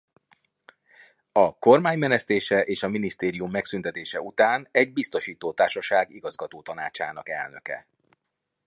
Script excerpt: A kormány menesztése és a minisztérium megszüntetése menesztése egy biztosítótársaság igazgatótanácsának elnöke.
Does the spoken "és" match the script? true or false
true